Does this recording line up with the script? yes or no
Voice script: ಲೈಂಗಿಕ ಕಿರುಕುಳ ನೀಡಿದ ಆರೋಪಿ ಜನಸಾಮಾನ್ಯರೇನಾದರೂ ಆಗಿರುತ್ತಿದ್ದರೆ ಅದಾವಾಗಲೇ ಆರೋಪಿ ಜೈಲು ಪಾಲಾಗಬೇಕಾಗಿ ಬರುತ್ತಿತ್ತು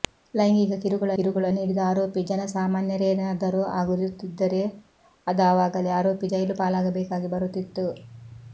no